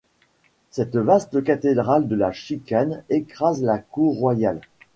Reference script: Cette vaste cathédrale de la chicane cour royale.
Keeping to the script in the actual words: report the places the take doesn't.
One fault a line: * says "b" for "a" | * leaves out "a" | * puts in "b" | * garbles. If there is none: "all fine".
* puts in "écrase la"